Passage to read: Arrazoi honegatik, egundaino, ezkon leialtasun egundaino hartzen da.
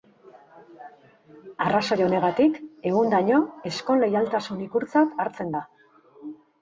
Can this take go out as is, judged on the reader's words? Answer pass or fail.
fail